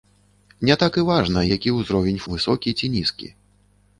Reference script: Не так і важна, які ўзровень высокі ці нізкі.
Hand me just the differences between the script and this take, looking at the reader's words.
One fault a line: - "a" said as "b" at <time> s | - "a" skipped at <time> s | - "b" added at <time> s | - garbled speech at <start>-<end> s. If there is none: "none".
none